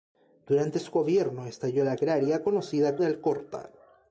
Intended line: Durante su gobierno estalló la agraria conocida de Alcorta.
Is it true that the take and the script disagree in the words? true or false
false